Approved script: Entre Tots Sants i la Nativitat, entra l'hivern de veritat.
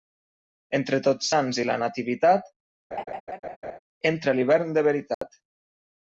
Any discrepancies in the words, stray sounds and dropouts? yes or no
yes